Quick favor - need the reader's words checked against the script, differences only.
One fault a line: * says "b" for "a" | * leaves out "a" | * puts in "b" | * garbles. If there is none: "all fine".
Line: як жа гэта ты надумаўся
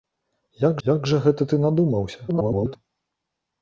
* puts in "як"
* garbles